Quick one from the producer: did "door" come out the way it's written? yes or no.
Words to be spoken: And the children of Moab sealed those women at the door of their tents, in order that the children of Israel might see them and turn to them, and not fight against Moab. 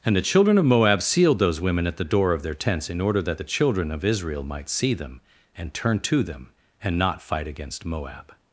yes